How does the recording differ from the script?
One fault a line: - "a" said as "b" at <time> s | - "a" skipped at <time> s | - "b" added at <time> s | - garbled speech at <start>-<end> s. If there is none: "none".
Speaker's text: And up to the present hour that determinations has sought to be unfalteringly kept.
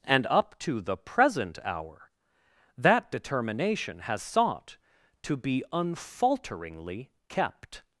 - "determinations" said as "determination" at 3.1 s